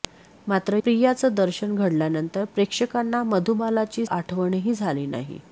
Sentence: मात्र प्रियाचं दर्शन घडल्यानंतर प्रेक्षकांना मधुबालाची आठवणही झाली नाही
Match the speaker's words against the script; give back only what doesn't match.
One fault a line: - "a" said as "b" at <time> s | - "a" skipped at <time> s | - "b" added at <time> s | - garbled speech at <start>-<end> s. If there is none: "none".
none